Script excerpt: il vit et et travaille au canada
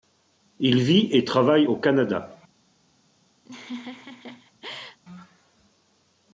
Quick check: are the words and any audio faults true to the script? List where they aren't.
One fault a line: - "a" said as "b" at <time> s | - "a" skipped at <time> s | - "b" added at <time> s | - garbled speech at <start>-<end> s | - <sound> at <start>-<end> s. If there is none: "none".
- "et" skipped at 1.2 s
- laugh at 3.4-5.0 s